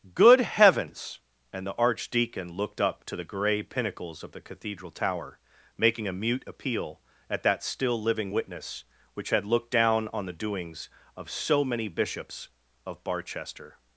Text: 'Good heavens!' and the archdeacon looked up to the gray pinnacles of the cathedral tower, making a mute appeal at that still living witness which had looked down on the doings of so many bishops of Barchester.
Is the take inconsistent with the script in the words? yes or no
no